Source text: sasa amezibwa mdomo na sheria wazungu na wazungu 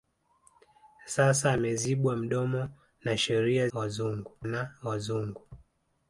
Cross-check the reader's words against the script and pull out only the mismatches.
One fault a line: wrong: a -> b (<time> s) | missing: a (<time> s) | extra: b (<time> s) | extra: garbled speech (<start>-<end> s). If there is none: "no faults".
no faults